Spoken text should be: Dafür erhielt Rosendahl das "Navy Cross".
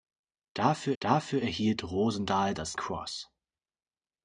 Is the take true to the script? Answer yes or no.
no